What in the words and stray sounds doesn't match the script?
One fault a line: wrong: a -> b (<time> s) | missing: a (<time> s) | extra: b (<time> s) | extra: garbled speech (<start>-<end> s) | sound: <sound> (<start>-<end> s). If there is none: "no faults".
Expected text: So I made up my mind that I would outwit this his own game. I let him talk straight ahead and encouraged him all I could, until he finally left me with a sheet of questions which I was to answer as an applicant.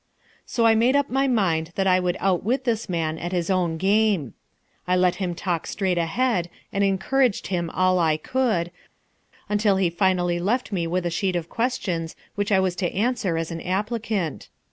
extra: man at (2.9 s)